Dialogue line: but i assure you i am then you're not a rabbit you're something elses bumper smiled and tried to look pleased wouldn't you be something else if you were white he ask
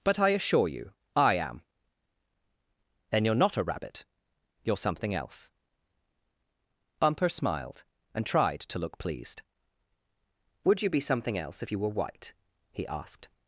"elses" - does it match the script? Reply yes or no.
no